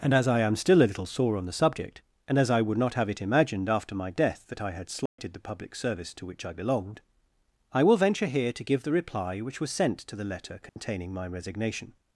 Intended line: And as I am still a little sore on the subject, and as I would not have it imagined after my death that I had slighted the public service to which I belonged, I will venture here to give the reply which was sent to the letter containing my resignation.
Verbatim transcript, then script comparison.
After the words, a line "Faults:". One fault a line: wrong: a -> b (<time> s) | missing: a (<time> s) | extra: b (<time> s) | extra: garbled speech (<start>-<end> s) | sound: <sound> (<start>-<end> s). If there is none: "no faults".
And as I am still a little sore on the subject, and as I would not have it imagined after my death that I had slighted the public service to which I belonged, I will venture here to give the reply which was sent to the letter containing my resignation.
Faults:
sound: dropout (5.1-5.2 s)
sound: dropout (10.7-10.8 s)